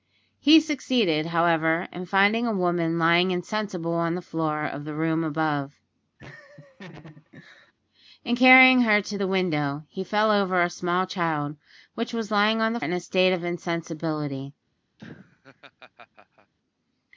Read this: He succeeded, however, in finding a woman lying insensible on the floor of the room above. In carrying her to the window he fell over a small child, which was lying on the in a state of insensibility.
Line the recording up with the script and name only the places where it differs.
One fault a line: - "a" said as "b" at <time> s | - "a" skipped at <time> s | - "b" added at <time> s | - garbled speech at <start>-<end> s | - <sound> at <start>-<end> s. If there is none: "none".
- laugh at 6.2-7.7 s
- laugh at 15.0-16.5 s